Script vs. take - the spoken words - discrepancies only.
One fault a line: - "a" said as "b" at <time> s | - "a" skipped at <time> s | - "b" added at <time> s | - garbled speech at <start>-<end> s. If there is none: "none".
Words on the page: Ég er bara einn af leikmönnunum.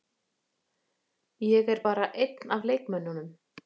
none